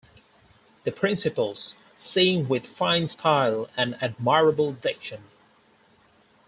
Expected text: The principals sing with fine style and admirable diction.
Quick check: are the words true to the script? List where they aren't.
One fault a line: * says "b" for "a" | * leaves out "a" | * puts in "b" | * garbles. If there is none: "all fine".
all fine